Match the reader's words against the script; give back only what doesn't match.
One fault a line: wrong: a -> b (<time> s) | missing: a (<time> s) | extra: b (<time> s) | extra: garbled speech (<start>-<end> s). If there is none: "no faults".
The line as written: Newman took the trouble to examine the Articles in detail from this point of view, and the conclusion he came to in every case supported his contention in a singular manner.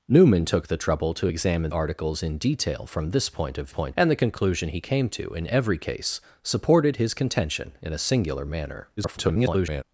missing: the (1.7 s)
wrong: view -> point (3.7 s)
extra: garbled speech (9.0-9.8 s)